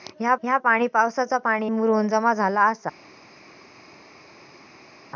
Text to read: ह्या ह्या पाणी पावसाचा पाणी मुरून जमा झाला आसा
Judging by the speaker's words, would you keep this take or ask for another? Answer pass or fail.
pass